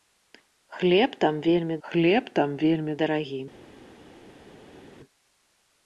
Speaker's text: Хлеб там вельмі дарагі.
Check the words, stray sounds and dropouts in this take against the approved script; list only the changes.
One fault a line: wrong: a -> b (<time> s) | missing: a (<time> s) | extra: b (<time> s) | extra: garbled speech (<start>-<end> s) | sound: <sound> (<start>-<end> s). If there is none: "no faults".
extra: хлеб там вельмі (1.9 s)